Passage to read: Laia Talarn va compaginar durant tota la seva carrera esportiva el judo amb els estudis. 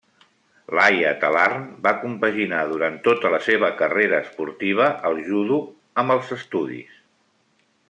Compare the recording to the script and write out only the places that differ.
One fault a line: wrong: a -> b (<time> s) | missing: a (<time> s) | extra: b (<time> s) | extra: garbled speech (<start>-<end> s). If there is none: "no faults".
no faults